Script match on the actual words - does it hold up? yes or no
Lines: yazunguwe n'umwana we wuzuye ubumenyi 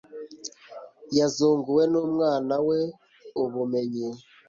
no